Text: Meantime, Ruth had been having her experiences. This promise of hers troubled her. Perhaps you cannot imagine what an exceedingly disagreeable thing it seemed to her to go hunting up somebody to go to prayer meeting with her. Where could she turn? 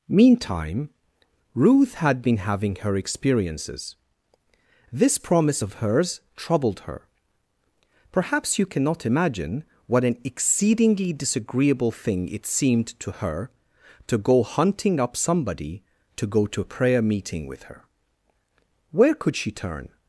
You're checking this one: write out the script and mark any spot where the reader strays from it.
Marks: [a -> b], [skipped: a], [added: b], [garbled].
Meantime, Ruth had been having her experiences. This promise of hers troubled her. Perhaps you cannot imagine what an exceedingly disagreeable thing it seemed to her to go hunting up somebody to go to [added: a] prayer meeting with her. Where could she turn?